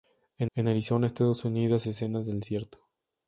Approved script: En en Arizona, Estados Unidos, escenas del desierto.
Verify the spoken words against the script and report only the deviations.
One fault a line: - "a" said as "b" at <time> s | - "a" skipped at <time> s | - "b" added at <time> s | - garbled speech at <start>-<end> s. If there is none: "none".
none